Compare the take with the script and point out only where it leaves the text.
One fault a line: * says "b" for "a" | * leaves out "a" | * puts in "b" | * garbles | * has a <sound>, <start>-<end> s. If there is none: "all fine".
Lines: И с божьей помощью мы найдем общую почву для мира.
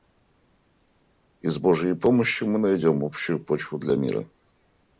all fine